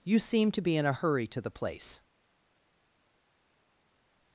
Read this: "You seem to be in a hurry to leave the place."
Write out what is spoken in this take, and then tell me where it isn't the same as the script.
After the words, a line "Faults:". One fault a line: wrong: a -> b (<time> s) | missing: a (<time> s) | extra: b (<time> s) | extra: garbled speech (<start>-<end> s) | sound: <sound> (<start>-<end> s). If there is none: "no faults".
"You seem to be in a hurry to the place."
Faults:
missing: leave (1.4 s)